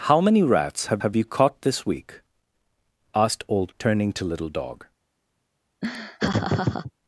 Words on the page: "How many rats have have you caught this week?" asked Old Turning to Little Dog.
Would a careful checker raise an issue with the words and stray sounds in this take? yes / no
yes